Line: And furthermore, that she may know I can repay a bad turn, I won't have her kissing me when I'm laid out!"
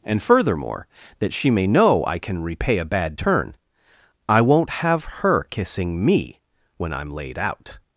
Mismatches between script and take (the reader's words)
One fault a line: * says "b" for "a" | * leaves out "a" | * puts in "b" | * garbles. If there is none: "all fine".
all fine